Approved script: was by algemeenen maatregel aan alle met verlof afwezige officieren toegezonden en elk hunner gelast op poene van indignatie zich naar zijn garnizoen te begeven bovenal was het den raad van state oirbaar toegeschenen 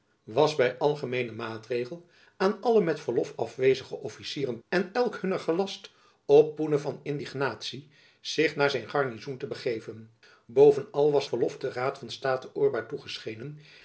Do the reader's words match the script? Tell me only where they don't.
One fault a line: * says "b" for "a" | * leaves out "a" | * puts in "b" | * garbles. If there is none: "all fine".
* leaves out "toegezonden"
* says "verlof" for "het"